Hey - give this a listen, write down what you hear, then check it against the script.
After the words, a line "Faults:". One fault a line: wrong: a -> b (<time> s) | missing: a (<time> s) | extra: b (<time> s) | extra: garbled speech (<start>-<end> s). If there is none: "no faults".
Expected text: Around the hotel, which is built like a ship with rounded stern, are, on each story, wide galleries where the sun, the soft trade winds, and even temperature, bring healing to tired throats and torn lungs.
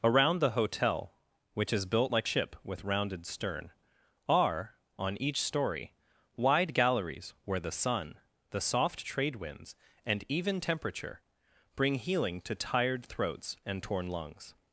Around the hotel, which is built like ship with rounded stern, are, on each story, wide galleries where the sun, the soft trade winds, and even temperature, bring healing to tired throats and torn lungs.
Faults:
missing: a (2.3 s)